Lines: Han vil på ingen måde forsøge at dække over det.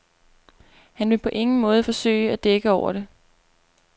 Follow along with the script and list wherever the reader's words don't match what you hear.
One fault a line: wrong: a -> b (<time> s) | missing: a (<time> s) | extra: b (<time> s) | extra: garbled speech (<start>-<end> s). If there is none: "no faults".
no faults